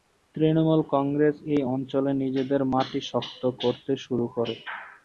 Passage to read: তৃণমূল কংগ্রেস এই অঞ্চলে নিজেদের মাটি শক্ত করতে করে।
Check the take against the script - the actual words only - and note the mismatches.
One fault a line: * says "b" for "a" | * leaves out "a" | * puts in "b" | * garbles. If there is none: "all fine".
* puts in "শুরু"